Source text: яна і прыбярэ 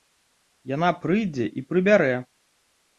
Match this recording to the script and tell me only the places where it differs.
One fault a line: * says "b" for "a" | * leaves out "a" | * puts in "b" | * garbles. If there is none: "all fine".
* puts in "прыйдзе"